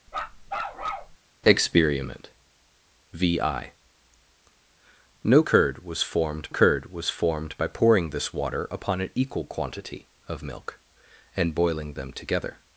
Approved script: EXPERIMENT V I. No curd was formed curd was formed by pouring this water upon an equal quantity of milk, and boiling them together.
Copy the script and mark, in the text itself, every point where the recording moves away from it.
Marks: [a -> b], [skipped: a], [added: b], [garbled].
EXPERIMENT V I. No curd was formed curd was formed by pouring this water upon an equal quantity of milk, and boiling them together.